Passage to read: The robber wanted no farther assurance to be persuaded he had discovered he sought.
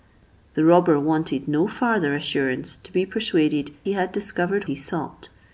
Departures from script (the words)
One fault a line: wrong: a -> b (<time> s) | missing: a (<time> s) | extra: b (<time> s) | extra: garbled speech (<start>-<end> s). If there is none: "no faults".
no faults